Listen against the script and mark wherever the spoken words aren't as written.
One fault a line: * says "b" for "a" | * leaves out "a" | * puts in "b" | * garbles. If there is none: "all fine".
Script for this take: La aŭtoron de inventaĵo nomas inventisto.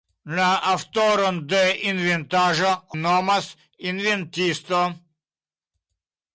all fine